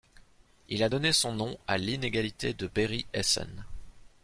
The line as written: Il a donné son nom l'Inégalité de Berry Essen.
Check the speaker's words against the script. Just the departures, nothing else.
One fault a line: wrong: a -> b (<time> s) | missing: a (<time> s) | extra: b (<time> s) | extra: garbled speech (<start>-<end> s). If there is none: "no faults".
extra: à (1.7 s)